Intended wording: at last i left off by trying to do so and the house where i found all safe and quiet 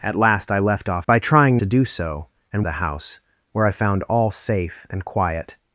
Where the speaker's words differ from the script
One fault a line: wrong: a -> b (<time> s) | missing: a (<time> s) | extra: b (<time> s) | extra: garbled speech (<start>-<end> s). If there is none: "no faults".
no faults